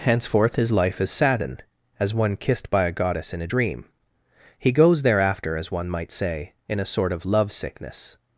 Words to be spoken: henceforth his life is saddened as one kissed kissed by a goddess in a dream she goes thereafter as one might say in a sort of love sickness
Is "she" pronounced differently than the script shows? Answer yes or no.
yes